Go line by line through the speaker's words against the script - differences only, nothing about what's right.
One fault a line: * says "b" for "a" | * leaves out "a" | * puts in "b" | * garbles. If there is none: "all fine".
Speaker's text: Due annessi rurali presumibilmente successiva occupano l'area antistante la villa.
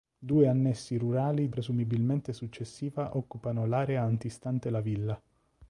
all fine